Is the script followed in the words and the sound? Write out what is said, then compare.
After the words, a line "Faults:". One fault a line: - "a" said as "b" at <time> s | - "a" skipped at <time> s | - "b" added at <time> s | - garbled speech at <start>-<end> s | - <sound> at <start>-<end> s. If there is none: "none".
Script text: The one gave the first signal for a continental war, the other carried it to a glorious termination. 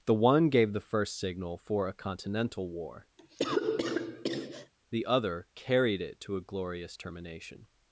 The one gave the first signal for a continental war, the other carried it to a glorious termination.
Faults:
- cough at 3.2-4.7 s